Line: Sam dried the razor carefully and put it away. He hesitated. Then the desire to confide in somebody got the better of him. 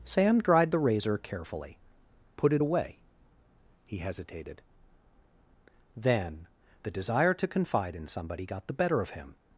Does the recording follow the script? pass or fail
fail